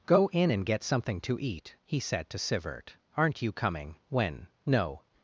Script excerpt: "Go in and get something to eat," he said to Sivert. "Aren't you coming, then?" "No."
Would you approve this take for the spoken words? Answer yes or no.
no